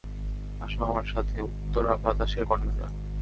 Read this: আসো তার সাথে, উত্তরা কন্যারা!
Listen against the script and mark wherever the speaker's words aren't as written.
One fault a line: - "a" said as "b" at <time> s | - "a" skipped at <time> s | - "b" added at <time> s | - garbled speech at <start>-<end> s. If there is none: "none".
- "তার" said as "আমার" at 0.8 s
- "বাতাসের" added at 2.0 s